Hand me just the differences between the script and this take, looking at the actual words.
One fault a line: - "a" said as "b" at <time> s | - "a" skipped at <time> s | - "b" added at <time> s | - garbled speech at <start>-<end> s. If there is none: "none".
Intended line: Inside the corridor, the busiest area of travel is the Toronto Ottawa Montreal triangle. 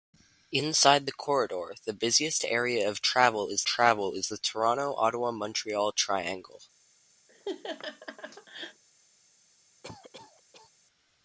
- "travel is" added at 3.6 s